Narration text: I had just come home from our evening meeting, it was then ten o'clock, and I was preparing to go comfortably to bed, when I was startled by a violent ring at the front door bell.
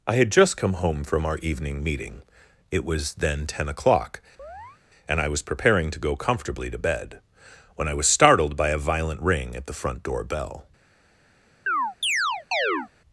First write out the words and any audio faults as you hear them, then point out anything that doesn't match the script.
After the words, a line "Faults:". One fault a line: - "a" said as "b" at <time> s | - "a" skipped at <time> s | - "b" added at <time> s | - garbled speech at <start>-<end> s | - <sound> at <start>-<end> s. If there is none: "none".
I had just come home from our evening meeting, it was then ten o'clock, and I was preparing to go comfortably to bed, when I was startled by a violent ring at the front door bell.
Faults:
- chirp at 4.4-4.8 s
- chirp at 11.7-12.9 s